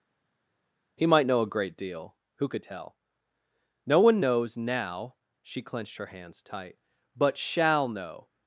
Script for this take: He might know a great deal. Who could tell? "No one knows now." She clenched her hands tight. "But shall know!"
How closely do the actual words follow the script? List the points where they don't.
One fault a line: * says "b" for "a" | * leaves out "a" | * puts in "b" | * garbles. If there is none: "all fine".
all fine